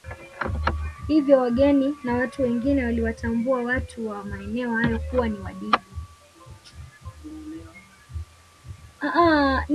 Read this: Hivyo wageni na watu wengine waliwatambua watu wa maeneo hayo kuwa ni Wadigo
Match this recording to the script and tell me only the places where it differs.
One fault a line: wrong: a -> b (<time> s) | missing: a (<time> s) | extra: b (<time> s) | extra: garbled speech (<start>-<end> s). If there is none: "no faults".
no faults